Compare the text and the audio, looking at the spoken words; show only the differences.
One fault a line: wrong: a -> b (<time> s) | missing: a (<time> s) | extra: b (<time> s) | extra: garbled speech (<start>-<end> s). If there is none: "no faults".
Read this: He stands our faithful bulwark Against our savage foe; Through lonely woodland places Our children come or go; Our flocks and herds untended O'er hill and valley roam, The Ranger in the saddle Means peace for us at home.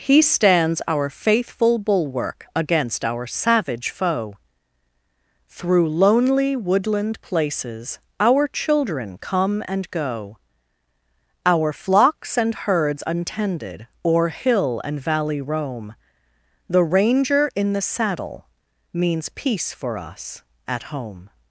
wrong: or -> and (9.7 s)